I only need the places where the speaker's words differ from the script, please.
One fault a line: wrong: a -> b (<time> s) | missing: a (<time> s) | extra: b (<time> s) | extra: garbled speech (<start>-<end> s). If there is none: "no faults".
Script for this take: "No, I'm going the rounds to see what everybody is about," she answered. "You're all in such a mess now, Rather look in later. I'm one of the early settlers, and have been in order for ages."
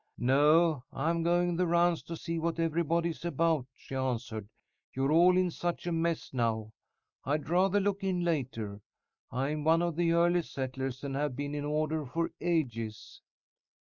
extra: I'd (7.2 s)